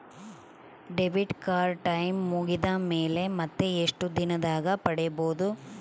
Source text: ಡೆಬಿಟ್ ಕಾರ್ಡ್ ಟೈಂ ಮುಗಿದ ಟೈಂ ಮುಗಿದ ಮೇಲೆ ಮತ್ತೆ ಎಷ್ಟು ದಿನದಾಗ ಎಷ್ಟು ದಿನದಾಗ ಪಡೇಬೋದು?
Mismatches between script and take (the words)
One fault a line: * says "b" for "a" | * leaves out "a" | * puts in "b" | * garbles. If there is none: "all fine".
* leaves out "ಟೈಂ ಮುಗಿದ"
* leaves out "ಎಷ್ಟು ದಿನದಾಗ"